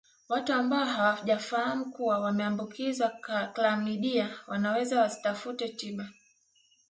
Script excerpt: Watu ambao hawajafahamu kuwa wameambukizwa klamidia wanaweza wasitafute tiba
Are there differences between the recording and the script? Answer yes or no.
no